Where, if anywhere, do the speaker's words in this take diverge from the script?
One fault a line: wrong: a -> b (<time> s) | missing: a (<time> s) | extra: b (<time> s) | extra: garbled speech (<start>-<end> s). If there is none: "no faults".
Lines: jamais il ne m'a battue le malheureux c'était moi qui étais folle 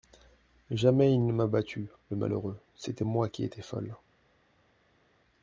no faults